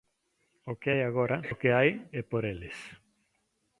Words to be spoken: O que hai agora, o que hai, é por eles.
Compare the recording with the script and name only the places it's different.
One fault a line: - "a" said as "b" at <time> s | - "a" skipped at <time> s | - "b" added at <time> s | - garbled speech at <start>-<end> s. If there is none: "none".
none